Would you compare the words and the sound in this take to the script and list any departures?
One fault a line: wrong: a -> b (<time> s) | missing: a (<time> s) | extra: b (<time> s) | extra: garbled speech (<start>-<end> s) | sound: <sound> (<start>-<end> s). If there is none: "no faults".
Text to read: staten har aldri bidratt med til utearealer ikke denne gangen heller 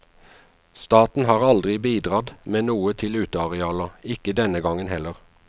extra: noe (2.7 s)